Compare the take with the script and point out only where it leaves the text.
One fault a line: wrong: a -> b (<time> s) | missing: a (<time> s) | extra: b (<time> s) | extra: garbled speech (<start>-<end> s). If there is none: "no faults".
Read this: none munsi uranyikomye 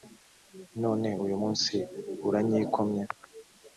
extra: uyu (1.2 s)